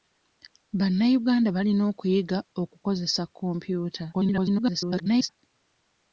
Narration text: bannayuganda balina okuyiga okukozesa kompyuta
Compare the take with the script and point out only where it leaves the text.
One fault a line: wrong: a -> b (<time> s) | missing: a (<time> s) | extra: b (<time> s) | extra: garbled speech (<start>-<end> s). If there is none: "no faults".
extra: garbled speech (4.1-5.3 s)